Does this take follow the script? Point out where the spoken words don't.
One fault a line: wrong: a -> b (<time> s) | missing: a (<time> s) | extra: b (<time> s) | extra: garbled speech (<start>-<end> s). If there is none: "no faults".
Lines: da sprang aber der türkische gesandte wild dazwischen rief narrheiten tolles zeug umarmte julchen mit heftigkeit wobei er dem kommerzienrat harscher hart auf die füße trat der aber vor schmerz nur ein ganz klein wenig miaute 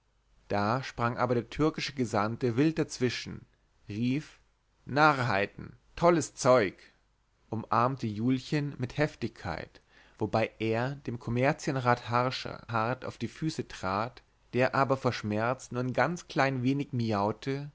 no faults